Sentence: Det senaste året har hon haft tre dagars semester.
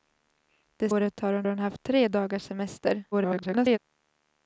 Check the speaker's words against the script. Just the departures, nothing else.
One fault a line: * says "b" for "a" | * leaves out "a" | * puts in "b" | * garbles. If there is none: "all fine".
* leaves out "senaste"
* puts in "hon"
* garbles